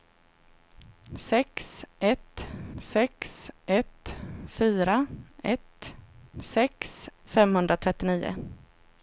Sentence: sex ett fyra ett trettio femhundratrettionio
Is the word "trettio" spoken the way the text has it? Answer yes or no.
no